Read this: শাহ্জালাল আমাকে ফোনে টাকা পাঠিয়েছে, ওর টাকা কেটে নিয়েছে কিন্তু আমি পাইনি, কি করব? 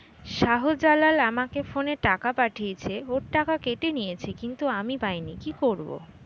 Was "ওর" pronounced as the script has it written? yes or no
yes